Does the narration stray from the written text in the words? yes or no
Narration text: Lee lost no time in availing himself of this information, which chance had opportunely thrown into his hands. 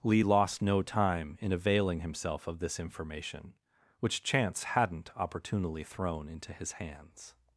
yes